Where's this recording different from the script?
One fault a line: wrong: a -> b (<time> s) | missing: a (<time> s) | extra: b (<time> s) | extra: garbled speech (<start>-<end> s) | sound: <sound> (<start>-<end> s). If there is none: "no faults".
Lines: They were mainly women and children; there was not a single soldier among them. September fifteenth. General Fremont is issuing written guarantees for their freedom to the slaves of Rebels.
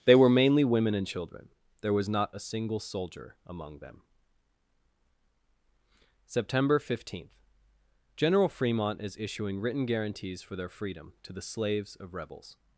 no faults